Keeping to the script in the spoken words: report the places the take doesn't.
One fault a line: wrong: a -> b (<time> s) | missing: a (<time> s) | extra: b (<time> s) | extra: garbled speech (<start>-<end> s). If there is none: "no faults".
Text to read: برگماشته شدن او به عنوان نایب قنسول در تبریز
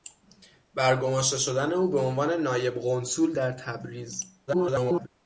extra: garbled speech (4.5-5.1 s)